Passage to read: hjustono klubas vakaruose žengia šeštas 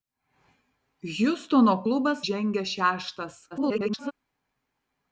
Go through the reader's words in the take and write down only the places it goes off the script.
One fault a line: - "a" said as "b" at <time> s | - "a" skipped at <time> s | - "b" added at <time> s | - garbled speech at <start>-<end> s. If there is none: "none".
- "vakaruose" skipped at 2.2 s
- garbled speech at 3.5-4.1 s